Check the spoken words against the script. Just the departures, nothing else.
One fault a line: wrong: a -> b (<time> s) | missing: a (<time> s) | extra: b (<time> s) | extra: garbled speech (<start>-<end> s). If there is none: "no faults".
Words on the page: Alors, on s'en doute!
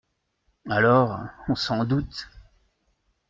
no faults